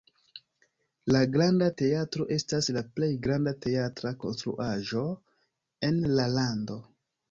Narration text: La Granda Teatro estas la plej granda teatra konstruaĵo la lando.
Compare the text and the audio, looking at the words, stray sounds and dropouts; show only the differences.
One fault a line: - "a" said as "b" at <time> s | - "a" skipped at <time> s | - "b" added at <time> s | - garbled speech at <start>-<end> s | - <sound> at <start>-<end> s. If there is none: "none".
- "en" added at 5.9 s